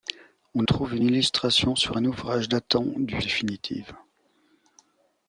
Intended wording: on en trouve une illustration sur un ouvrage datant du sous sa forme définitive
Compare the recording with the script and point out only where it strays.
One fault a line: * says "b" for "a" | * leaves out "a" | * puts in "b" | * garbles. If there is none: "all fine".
* leaves out "en"
* leaves out "sous sa forme"